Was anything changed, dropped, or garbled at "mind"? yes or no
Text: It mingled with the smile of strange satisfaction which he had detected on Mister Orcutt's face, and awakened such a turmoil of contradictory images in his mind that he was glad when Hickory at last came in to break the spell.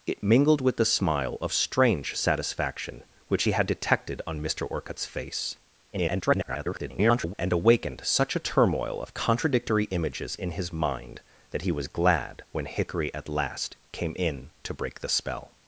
no